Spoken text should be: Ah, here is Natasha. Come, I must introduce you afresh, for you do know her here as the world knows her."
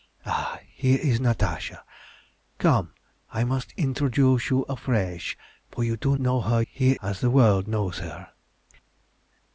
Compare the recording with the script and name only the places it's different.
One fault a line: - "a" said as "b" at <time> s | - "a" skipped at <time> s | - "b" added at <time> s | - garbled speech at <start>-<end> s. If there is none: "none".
none